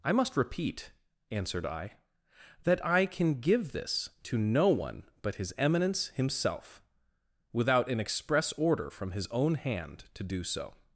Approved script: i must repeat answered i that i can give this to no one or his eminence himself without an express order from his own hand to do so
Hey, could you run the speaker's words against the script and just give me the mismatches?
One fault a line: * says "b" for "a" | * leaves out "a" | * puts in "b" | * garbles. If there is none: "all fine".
* says "but" for "or"